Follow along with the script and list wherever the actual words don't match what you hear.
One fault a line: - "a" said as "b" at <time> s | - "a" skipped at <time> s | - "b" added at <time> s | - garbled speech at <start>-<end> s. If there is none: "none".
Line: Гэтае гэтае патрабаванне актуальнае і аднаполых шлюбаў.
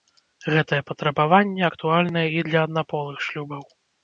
- "гэтае" skipped at 0.8 s
- "для" added at 2.5 s